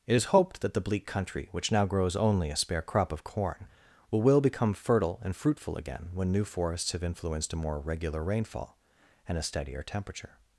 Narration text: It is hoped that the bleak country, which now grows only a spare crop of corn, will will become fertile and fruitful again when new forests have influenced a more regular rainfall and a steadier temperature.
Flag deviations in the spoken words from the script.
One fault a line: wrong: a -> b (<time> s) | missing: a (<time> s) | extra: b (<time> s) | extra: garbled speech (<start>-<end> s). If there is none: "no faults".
no faults